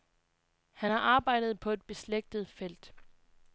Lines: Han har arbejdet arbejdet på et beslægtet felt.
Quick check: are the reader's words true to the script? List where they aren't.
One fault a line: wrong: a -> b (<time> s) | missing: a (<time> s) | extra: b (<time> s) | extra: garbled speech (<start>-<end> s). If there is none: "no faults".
missing: arbejdet (1.6 s)